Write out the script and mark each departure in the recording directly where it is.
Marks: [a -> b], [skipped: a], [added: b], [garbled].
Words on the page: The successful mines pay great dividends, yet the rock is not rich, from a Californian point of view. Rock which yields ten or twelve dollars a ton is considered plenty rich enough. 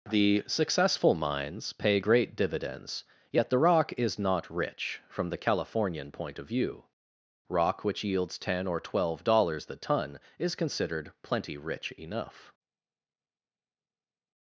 The successful mines pay great dividends, yet the rock is not rich, from [a -> the] Californian point of view. Rock which yields ten or twelve dollars [a -> the] ton is considered plenty rich enough.